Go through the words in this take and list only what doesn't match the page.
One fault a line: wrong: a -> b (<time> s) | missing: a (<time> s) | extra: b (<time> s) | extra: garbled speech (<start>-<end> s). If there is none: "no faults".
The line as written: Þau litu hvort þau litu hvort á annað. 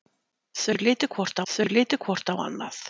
no faults